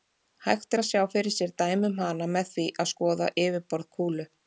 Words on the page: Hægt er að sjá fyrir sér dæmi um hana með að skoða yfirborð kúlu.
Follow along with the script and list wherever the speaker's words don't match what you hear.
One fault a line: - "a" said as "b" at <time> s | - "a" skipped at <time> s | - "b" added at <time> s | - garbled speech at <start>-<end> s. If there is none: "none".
- "því" added at 2.5 s